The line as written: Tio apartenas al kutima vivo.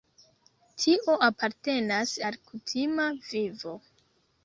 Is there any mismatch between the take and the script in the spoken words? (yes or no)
no